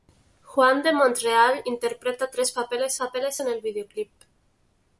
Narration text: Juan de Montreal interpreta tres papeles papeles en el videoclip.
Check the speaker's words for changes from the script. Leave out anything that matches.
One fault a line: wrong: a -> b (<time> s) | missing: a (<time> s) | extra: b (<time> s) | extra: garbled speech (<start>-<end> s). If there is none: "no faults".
no faults